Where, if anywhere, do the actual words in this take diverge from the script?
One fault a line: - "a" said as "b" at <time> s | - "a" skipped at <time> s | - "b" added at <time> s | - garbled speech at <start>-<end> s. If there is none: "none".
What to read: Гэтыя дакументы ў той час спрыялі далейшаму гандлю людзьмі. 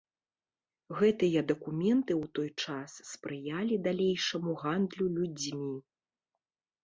none